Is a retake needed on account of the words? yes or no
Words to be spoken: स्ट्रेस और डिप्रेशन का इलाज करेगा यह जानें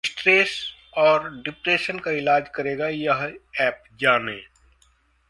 yes